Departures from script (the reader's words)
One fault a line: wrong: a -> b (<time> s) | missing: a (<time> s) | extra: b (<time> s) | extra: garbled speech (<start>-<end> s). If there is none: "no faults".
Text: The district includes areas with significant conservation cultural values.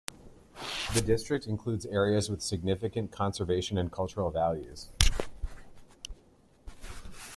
extra: and (3.8 s)